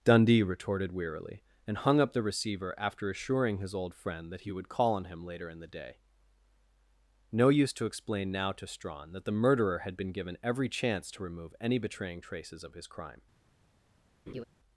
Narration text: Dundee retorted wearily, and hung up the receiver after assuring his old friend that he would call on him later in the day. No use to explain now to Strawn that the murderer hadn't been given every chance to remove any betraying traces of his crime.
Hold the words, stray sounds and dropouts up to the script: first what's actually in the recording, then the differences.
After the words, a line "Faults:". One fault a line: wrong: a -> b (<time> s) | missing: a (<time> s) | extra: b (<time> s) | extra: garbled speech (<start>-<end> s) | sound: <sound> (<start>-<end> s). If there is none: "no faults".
Dundee retorted wearily, and hung up the receiver after assuring his old friend that he would call on him later in the day. No use to explain now to Strawn that the murderer had been given every chance to remove any betraying traces of his crime.
Faults:
wrong: hadn't -> had (9.8 s)
sound: laugh (14.3-14.4 s)